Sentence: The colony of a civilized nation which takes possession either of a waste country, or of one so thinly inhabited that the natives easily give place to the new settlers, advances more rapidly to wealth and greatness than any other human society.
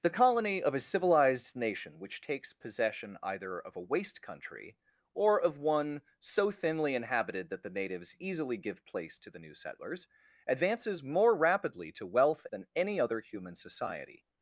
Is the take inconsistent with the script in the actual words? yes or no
yes